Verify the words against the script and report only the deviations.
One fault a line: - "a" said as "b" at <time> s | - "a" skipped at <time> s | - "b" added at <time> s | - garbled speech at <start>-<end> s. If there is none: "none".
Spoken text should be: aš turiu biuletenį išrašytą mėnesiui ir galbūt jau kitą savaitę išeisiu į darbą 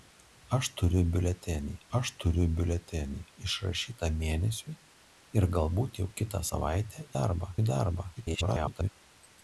- "aš turiu biuletenį" added at 2.0 s
- "išeisiu" said as "darbą" at 7.1 s
- garbled speech at 8.1-8.9 s